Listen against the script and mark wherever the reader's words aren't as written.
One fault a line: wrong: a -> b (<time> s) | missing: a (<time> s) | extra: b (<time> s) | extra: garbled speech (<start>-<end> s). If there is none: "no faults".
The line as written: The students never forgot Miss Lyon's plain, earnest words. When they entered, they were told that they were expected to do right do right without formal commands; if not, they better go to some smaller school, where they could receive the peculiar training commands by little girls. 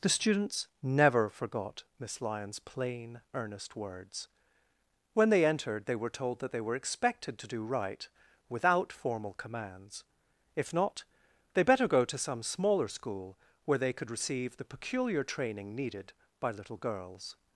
missing: do right (8.1 s)
wrong: commands -> needed (15.8 s)